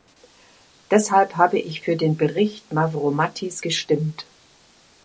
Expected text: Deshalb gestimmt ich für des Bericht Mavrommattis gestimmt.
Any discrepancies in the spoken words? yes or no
yes